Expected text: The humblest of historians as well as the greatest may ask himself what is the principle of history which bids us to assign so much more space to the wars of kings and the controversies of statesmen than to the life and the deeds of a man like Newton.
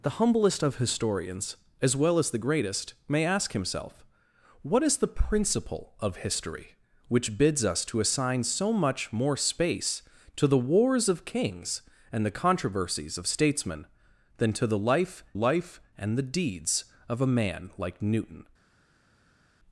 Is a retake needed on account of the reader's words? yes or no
yes